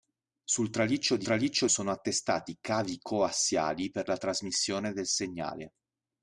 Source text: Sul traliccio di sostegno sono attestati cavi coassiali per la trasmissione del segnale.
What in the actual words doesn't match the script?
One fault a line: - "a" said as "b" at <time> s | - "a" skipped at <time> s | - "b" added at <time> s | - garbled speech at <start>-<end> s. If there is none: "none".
- "sostegno" said as "traliccio" at 1.2 s